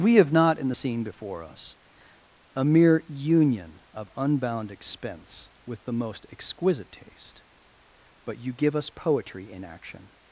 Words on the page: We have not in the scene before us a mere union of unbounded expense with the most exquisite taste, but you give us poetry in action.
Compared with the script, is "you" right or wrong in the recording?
right